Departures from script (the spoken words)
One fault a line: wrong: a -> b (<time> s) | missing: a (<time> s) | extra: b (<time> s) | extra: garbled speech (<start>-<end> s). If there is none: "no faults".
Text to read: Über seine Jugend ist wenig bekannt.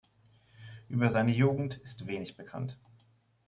no faults